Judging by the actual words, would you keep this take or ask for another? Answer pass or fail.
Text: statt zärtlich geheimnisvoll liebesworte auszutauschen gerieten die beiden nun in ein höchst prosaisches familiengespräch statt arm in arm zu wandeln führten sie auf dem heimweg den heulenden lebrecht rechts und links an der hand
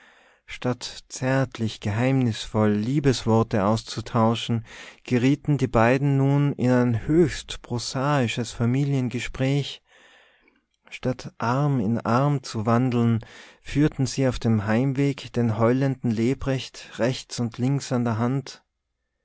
pass